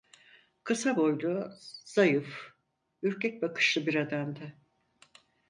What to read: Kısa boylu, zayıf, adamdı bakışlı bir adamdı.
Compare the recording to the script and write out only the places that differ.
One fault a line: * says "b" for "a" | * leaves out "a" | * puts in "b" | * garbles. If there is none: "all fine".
* says "ürkek" for "adamdı"